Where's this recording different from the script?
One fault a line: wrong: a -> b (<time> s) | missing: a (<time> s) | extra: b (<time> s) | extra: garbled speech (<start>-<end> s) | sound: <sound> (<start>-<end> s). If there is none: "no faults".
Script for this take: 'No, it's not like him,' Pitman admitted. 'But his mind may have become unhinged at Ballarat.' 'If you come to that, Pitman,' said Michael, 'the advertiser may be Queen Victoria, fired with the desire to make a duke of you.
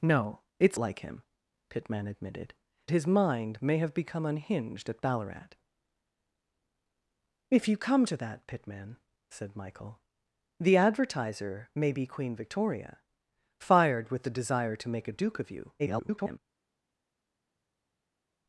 missing: not (0.8 s)
missing: But (2.5 s)
extra: garbled speech (15.8-16.4 s)